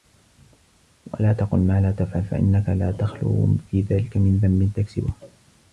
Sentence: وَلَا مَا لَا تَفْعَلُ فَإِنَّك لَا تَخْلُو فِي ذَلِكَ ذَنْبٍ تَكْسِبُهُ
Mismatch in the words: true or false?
true